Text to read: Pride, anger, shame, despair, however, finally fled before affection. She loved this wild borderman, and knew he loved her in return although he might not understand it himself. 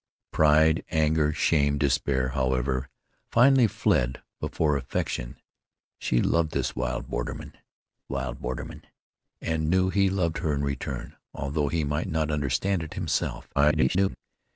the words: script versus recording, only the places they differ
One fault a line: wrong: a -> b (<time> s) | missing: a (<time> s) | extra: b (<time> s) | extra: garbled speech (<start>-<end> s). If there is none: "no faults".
extra: wild borderman (8.1 s)
extra: garbled speech (13.5-14.2 s)